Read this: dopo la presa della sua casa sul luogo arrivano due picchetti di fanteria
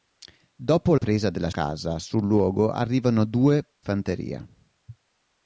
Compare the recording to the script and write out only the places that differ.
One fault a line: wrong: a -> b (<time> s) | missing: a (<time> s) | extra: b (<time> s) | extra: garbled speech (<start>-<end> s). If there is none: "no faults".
missing: la (0.9 s)
missing: sua (1.5 s)
missing: picchetti di (3.6 s)